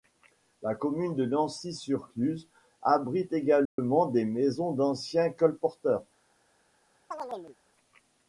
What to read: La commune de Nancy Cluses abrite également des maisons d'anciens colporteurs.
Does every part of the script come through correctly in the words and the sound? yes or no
no